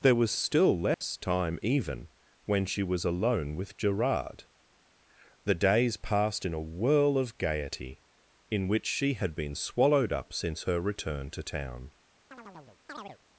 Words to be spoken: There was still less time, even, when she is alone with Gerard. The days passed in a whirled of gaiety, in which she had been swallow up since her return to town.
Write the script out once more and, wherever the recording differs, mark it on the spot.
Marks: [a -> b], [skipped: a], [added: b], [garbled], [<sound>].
There was still less [dropout] time, even, when she [is -> was] alone with Gerard. The days passed in a [whirled -> whirl] of gaiety, in which she had been [swallow -> swallowed] up since her return to town. [chirp]